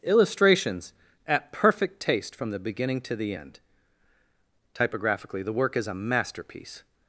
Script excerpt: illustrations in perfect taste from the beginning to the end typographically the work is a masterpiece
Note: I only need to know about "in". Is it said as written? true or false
false